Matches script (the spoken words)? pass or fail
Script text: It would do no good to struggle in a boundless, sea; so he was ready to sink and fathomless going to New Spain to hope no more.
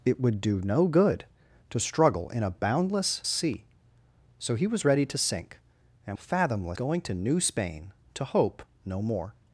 pass